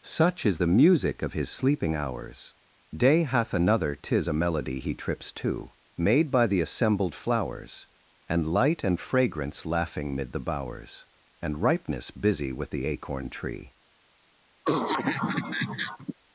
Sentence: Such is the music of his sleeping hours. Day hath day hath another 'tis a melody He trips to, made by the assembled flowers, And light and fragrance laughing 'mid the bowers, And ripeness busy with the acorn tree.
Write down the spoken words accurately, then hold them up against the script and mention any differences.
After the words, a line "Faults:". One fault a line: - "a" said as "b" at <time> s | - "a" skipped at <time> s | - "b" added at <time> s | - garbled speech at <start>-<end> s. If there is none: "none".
Such is the music of his sleeping hours. Day hath another 'tis a melody He trips to, made by the assembled flowers, And light and fragrance laughing 'mid the bowers, And ripeness busy with the acorn tree.
Faults:
- "day hath" skipped at 3.5 s